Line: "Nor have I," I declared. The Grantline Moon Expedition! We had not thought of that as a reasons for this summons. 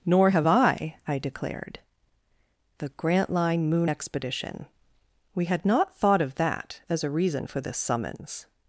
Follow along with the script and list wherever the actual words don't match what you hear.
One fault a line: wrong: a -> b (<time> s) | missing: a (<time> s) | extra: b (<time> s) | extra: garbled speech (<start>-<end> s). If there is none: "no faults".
wrong: reasons -> reason (7.1 s)